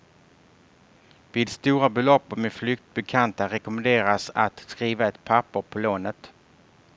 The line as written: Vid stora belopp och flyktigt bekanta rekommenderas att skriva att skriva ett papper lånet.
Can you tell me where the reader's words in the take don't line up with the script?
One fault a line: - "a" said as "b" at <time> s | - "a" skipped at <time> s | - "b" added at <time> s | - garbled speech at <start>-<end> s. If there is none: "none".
- "med" added at 2.4 s
- "att skriva" skipped at 5.1 s
- "på" added at 5.6 s